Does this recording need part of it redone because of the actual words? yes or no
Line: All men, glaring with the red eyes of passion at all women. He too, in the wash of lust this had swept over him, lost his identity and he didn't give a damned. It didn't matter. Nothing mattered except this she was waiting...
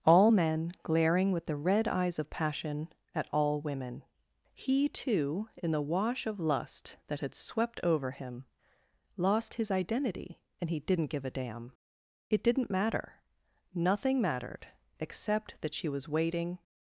yes